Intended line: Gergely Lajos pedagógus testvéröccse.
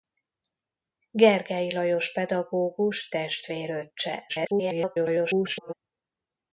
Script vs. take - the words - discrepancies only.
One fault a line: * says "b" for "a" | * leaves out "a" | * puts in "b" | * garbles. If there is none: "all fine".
* garbles